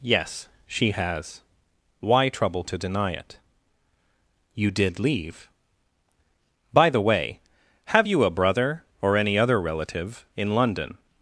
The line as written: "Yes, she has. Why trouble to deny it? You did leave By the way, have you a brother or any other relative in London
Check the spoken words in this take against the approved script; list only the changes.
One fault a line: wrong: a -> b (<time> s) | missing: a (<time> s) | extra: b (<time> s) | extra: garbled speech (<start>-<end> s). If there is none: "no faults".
no faults